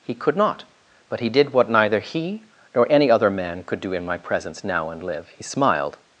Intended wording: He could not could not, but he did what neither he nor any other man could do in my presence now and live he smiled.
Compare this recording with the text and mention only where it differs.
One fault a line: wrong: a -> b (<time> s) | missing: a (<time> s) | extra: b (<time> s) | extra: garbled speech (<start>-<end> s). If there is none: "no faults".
missing: could not (0.6 s)